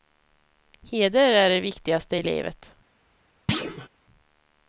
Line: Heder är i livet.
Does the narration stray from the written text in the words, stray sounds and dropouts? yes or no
yes